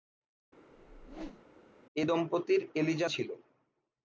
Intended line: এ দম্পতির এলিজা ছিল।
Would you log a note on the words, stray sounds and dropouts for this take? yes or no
yes